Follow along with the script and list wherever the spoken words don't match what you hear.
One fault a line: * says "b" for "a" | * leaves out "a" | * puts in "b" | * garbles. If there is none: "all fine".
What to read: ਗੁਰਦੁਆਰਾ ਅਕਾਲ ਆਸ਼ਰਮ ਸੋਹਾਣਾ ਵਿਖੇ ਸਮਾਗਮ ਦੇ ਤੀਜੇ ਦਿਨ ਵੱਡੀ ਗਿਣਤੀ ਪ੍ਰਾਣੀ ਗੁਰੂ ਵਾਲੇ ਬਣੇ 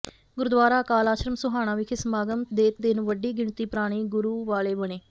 * leaves out "ਤੀਜੇ"